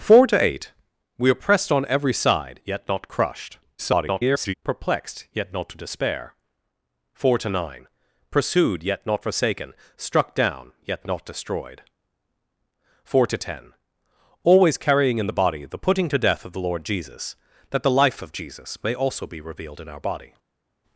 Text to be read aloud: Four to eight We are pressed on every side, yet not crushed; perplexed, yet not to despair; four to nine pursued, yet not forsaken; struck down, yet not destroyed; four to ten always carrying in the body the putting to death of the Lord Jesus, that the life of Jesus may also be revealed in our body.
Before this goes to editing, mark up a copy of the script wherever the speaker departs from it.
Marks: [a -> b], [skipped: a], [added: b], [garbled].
Four to eight We are pressed on every side, yet not crushed; [garbled] perplexed, yet not to despair; four to nine pursued, yet not forsaken; struck down, yet not destroyed; four to ten always carrying in the body the putting to death of the Lord Jesus, that the life of Jesus may also be revealed in our body.